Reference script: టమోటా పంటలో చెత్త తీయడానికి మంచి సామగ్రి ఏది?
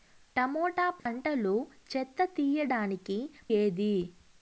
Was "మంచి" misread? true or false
true